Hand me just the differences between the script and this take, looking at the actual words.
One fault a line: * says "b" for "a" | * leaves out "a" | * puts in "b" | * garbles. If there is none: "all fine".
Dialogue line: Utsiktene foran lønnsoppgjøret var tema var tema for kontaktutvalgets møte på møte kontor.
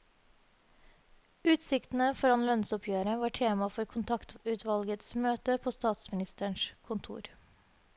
* leaves out "var tema"
* says "statsministerens" for "møte"